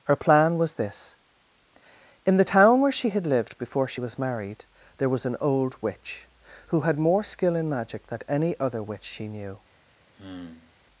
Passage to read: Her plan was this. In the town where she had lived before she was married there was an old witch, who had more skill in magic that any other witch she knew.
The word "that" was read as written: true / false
false